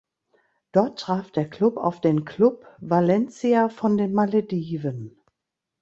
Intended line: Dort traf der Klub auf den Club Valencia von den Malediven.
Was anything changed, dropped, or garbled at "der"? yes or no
no